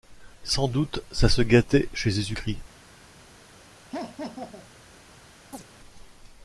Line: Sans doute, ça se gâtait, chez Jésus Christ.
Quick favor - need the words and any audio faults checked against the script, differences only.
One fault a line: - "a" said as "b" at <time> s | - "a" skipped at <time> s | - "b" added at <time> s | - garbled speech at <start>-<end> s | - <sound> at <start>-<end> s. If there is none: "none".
- laugh at 3.9-4.7 s
- chirp at 5.5-5.6 s